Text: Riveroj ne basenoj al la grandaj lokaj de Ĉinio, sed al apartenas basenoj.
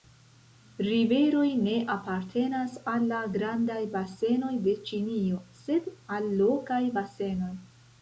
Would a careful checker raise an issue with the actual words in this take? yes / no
yes